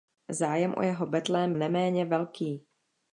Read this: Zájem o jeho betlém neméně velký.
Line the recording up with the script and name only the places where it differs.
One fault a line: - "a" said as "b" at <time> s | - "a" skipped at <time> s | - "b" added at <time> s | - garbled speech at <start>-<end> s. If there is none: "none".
none